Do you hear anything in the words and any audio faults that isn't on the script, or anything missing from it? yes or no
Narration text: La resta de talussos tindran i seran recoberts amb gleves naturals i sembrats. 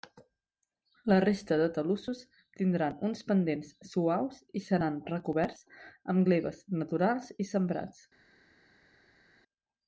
yes